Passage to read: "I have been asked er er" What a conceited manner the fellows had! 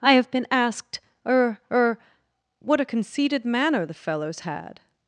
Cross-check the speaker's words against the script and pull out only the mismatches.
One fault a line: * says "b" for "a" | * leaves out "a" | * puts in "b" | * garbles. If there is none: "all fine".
all fine